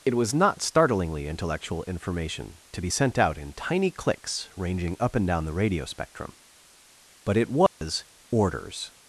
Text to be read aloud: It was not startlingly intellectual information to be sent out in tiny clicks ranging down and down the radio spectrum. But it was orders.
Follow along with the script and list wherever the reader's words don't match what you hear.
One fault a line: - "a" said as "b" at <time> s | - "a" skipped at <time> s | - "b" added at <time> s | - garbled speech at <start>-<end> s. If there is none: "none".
- "down" said as "up" at 5.0 s